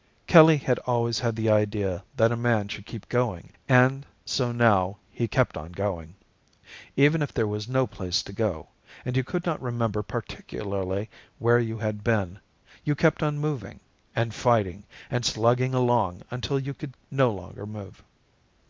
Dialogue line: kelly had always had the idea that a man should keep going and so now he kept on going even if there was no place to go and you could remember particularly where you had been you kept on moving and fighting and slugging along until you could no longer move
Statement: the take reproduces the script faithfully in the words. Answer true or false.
false